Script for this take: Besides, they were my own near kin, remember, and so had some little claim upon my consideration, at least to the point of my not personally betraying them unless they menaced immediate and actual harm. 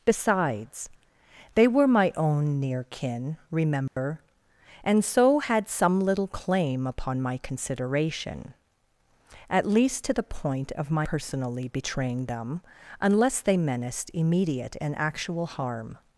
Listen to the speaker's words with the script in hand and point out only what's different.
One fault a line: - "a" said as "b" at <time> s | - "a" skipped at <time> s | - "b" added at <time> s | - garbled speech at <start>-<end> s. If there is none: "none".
- "not" skipped at 11.1 s